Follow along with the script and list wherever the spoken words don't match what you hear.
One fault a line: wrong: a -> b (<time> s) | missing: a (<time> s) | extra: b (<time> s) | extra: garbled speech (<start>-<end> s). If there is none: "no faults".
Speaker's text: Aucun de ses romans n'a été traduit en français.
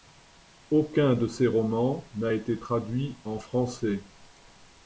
no faults